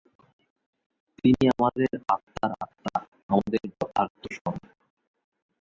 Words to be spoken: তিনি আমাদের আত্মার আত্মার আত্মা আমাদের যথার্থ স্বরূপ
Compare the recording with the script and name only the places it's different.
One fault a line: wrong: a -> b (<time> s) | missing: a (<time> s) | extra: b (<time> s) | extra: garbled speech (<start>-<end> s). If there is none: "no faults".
missing: আত্মার (2.5 s)